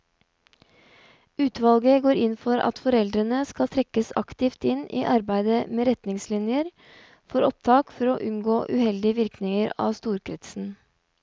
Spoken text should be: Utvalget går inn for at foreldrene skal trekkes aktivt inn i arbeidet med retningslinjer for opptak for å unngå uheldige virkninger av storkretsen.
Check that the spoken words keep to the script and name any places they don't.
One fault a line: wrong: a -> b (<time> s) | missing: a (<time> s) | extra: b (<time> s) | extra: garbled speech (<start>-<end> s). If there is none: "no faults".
no faults